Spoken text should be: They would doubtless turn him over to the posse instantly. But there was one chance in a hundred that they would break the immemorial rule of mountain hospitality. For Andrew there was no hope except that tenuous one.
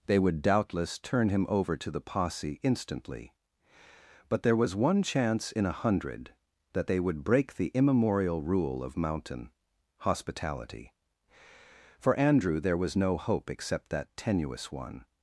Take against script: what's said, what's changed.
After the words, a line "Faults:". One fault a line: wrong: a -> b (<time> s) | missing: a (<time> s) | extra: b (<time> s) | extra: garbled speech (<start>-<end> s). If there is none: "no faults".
They would doubtless turn him over to the posse instantly. But there was one chance in a hundred that they would break the immemorial rule of mountain hospitality. For Andrew there was no hope except that tenuous one.
Faults:
no faults